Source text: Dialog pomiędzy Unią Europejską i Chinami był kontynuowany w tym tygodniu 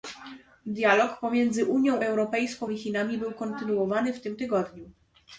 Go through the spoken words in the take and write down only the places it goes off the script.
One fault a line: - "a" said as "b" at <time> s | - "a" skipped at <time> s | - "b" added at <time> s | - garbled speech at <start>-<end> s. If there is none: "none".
none